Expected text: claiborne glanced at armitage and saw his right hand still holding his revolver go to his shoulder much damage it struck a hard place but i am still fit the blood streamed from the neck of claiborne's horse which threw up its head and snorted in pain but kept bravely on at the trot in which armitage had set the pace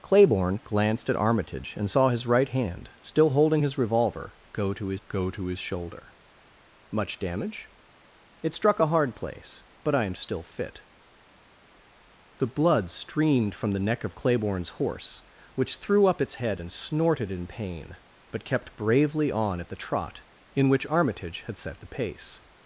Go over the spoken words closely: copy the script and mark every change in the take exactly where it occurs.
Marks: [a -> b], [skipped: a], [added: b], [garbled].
claiborne glanced at armitage and saw his right hand still holding his revolver go to his [added: go to his] shoulder much damage it struck a hard place but i am still fit the blood streamed from the neck of claiborne's horse which threw up its head and snorted in pain but kept bravely on at the trot in which armitage had set the pace